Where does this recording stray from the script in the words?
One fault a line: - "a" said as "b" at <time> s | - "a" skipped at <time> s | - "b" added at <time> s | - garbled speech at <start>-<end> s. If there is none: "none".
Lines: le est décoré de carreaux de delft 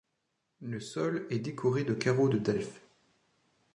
- "sol" added at 0.8 s